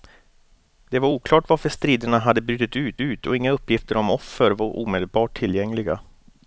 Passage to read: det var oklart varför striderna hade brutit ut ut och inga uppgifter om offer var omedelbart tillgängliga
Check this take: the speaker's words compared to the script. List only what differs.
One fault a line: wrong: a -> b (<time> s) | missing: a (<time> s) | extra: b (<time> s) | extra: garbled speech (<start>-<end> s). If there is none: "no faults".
no faults